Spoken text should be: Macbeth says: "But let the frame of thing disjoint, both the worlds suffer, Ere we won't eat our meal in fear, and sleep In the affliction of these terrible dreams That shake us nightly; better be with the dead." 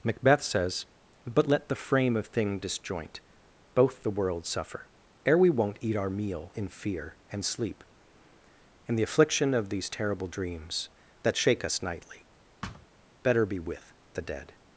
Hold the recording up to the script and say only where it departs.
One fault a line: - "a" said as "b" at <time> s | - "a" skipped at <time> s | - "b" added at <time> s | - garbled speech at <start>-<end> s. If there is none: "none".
none